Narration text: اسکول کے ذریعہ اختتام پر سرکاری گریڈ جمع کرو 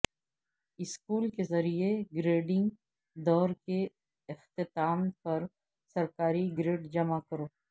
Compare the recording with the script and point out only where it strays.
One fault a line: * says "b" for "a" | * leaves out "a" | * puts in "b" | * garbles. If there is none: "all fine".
* puts in "گریڈنگ دور کے"